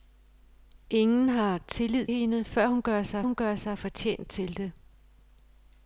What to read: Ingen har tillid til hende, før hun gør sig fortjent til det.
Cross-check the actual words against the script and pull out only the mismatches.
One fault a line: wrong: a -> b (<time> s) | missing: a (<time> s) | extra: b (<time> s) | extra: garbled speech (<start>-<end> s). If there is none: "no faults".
missing: til (2.1 s)
extra: hun gør sig (3.2 s)